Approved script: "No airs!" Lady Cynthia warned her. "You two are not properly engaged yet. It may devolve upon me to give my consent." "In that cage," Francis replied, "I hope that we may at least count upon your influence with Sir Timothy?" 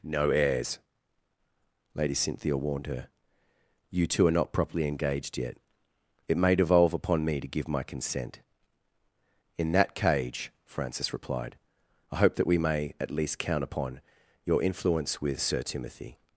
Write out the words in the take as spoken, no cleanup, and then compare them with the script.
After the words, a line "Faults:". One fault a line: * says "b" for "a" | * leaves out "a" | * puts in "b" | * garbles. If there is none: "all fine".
"No airs!" Lady Cynthia warned her. "You two are not properly engaged yet. It may devolve upon me to give my consent." "In that cage," Francis replied, "I hope that we may at least count upon your influence with Sir Timothy?"
Faults:
all fine